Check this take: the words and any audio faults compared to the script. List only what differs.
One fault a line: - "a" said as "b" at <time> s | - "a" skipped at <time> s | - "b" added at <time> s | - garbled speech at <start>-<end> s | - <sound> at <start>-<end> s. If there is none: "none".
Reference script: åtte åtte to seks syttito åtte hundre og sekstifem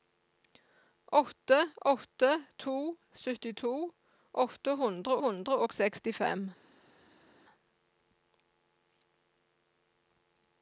- "seks" skipped at 2.7 s
- "hundre" added at 5.2 s